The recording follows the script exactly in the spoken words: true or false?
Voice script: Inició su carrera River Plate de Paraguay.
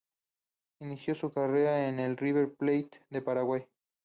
false